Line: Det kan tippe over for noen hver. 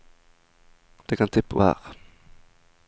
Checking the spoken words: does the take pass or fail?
fail